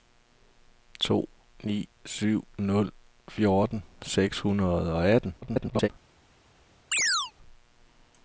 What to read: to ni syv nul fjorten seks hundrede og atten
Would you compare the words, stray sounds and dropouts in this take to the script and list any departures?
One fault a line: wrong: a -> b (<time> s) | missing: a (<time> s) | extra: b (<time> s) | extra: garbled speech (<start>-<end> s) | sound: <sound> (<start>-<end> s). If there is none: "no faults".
extra: garbled speech (5.4-5.9 s)
sound: chirp (6.9-7.3 s)